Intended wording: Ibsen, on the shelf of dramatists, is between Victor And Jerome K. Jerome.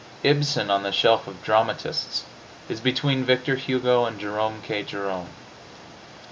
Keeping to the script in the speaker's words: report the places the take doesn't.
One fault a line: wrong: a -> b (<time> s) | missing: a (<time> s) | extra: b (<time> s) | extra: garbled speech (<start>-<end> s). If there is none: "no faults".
extra: Hugo (3.5 s)